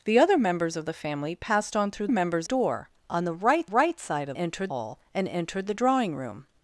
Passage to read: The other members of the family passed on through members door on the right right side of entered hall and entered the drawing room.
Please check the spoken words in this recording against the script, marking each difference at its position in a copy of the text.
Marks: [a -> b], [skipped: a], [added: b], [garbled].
The other members of the family passed on through members door on the right right side of entered hall and entered the drawing room.